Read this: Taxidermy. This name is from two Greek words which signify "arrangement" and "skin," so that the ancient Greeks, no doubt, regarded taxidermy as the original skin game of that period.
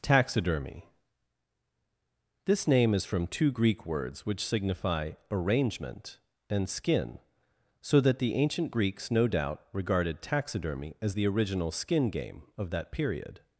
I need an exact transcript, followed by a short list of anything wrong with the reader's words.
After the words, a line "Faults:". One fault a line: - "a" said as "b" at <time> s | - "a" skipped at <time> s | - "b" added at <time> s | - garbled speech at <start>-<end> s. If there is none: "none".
Taxidermy. This name is from two Greek words which signify "arrangement" and "skin," so that the ancient Greeks, no doubt, regarded taxidermy as the original skin game of that period.
Faults:
none